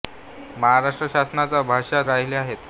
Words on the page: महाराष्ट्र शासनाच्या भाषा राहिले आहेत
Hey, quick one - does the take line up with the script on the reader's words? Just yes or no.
yes